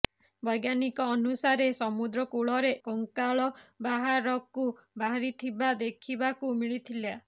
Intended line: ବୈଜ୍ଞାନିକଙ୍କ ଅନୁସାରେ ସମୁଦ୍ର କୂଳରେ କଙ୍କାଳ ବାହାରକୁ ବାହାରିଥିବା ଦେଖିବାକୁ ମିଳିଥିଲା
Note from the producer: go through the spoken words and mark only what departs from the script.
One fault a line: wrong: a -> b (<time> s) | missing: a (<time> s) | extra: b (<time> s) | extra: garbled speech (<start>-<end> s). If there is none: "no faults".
no faults